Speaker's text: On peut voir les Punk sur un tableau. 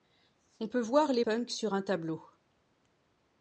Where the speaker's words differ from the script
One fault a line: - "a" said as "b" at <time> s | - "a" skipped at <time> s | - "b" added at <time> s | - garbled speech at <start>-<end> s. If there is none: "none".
none